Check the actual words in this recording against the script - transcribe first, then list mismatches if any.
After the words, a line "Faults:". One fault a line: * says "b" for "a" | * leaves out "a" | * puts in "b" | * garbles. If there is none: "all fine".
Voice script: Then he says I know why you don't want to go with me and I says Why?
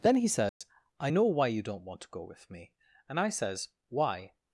Then he says I know why you don't want to go with me and I says Why?
Faults:
all fine